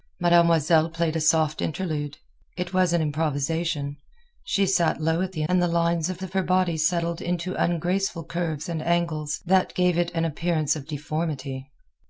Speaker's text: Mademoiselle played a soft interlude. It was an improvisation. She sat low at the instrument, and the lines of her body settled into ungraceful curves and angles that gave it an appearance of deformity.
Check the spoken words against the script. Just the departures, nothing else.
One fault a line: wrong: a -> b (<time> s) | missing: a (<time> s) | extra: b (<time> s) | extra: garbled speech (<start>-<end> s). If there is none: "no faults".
missing: instrument (5.4 s)
extra: of (6.2 s)